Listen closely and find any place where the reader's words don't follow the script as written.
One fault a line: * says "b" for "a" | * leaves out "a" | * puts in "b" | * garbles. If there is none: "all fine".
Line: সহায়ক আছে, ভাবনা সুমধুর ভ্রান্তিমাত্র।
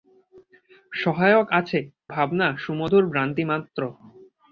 all fine